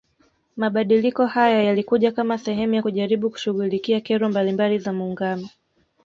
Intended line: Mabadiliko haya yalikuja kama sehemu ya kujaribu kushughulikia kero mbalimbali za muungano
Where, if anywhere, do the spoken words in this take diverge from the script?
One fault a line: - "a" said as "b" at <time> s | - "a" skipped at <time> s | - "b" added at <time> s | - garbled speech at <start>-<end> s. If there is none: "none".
none